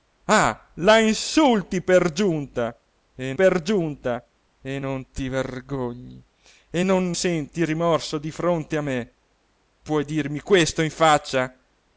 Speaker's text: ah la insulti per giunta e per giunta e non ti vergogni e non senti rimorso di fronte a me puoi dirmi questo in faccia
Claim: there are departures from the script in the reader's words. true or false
false